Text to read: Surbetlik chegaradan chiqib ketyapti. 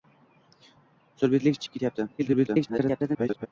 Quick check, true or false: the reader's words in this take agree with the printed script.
false